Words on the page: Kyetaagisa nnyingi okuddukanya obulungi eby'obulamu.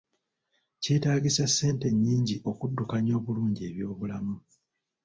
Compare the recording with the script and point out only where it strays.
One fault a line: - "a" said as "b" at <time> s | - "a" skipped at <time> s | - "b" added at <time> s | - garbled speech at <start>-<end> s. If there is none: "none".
- "ssente" added at 1.5 s